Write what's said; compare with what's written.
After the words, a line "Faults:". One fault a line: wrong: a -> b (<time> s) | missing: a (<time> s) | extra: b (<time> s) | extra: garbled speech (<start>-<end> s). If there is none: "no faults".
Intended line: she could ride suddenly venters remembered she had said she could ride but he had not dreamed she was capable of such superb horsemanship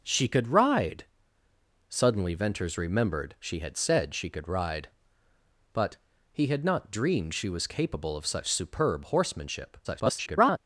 she could ride suddenly venters remembered she had said she could ride but he had not dreamed she was capable of such superb horsemanship [garbled]
Faults:
extra: garbled speech (9.8-10.6 s)